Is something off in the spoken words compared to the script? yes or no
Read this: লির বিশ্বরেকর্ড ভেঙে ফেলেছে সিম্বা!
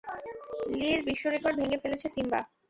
no